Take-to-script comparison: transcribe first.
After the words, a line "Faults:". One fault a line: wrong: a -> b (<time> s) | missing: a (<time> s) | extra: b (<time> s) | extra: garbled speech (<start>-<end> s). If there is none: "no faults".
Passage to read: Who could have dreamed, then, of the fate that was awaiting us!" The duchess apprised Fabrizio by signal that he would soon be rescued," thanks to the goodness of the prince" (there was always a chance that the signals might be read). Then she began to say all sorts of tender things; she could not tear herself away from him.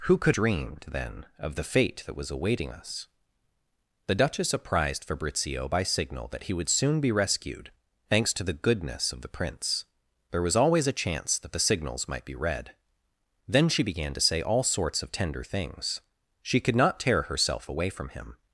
Who could dreamed, then, of the fate that was awaiting us!" The duchess apprised Fabrizio by signal that he would soon be rescued," thanks to the goodness of the prince" (there was always a chance that the signals might be read). Then she began to say all sorts of tender things; she could not tear herself away from him.
Faults:
missing: have (0.3 s)